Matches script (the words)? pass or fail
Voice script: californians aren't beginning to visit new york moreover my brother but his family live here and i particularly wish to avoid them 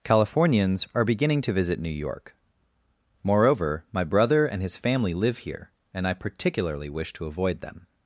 fail